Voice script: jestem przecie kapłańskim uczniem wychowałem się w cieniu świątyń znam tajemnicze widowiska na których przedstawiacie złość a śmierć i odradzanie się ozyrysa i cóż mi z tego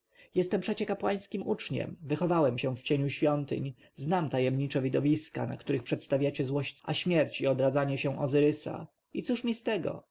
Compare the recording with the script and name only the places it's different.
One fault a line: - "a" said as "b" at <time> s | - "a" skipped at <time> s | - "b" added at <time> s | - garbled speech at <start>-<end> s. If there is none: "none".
none